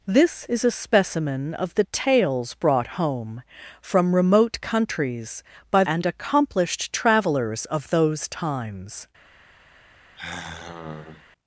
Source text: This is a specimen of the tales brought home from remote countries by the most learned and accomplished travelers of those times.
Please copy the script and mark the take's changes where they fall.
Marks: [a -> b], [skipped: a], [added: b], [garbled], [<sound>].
This is a specimen of the tales brought home from remote countries by [skipped: the most learned] and accomplished travelers of those times. [sigh]